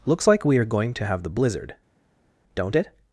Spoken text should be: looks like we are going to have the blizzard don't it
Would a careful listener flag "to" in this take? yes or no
no